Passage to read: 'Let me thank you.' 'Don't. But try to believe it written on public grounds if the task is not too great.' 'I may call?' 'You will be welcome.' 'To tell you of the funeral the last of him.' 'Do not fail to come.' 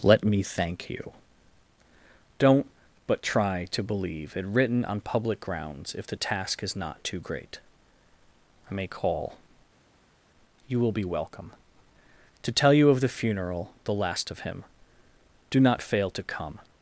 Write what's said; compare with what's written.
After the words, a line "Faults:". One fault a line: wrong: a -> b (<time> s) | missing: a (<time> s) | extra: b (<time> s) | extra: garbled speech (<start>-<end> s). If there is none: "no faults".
'Let me thank you.' 'Don't. But try to believe it written on public grounds if the task is not too great.' 'I may call?' 'You will be welcome.' 'To tell you of the funeral the last of him.' 'Do not fail to come.'
Faults:
no faults